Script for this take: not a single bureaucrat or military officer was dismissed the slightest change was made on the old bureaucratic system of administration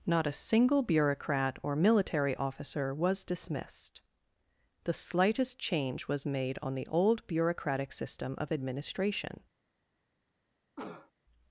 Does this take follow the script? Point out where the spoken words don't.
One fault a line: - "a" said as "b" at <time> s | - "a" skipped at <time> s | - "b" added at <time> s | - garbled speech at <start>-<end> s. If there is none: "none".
none